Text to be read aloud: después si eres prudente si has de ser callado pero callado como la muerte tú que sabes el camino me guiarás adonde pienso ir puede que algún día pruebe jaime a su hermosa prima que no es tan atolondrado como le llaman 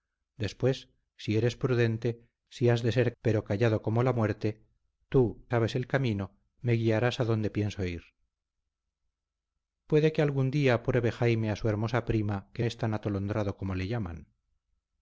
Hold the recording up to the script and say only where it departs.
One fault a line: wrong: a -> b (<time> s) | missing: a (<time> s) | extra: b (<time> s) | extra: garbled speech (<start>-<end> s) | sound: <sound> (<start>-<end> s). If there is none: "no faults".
missing: callado (3.1 s)
missing: que (5.5 s)
missing: no (12.6 s)